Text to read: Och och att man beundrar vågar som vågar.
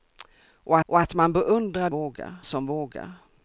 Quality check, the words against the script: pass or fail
pass